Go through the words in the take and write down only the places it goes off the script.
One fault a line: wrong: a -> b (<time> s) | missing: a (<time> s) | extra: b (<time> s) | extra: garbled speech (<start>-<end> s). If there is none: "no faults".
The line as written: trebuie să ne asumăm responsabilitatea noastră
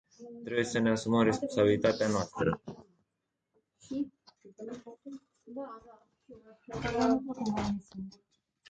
no faults